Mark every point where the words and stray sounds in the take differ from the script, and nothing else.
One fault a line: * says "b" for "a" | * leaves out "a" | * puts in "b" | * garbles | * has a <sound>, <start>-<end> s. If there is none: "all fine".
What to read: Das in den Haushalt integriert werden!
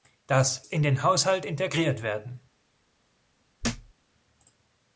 * has a thud, 3.6-3.9 s